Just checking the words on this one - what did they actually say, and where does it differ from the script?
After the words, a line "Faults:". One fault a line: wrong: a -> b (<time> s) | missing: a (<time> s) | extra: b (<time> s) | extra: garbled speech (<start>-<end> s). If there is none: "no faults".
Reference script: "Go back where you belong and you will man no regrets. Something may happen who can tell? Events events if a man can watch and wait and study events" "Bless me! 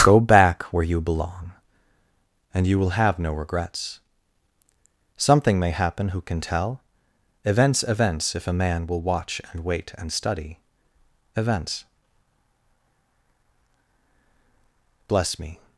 "Go back where you belong and you will have no regrets. Something may happen who can tell? Events events if a man will watch and wait and study events" "Bless me!
Faults:
wrong: man -> have (2.9 s)
wrong: can -> will (8.9 s)